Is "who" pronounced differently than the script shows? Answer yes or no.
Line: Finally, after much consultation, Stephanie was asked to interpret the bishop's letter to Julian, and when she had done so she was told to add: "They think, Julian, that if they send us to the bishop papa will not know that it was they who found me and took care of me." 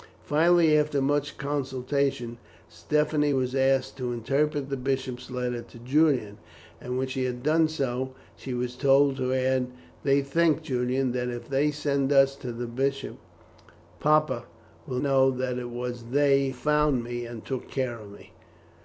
yes